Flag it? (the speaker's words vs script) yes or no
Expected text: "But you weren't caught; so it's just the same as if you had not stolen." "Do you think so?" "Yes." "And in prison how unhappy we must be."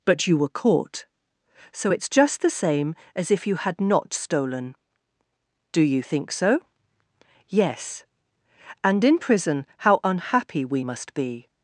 yes